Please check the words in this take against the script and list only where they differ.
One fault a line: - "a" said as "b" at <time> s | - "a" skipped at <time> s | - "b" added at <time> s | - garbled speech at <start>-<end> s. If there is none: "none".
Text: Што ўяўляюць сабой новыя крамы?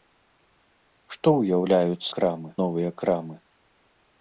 - "сабой" said as "крамы" at 2.2 s